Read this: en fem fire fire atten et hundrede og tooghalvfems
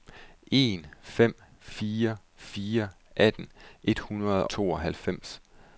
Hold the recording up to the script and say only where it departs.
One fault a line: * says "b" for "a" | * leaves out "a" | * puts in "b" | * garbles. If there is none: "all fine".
* leaves out "og"